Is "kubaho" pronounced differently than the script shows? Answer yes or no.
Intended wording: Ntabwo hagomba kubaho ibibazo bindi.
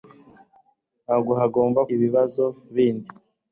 yes